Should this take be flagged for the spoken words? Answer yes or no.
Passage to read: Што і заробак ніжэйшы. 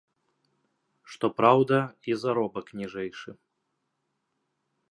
yes